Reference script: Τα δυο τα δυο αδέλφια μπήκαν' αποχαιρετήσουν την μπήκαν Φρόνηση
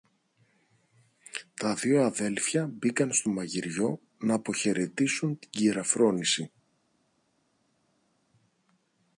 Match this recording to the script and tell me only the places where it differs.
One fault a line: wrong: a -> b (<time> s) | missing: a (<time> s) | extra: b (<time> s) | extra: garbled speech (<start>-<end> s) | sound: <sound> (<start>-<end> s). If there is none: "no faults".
wrong: τα δυο αδέλφια μπήκαν -> αδέλφια μπήκαν στο μαγειριό ν (2.0 s)
wrong: μπήκαν -> κυρα (5.5 s)